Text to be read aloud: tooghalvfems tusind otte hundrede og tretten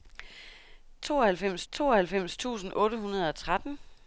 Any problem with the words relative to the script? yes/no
yes